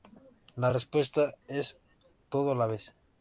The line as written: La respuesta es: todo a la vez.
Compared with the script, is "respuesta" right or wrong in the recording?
right